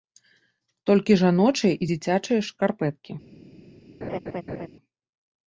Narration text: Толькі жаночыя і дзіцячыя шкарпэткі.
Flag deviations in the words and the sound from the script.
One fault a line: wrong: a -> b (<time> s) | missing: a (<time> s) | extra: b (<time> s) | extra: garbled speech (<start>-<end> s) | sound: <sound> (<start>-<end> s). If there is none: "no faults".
sound: laugh (4.0-4.7 s)